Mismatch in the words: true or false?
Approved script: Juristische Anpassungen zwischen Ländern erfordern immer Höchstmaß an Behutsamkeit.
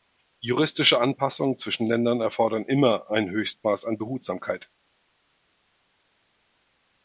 true